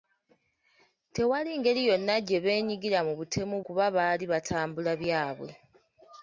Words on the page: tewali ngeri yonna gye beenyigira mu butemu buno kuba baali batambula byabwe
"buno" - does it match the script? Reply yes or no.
no